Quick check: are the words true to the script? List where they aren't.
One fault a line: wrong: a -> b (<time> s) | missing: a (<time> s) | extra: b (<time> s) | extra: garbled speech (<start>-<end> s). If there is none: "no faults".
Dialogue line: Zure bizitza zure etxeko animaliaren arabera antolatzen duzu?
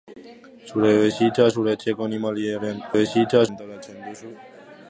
wrong: arabera -> bizitza (3.0 s)